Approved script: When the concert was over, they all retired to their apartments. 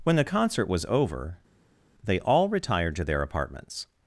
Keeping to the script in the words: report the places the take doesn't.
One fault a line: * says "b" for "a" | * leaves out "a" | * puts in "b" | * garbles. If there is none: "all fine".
all fine